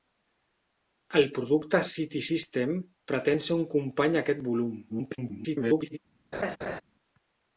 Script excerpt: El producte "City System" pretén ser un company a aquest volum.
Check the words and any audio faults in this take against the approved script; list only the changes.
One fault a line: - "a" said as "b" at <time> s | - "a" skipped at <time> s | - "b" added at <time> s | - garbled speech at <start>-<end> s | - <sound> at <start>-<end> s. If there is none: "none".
- garbled speech at 4.9-6.0 s
- laugh at 6.3-6.8 s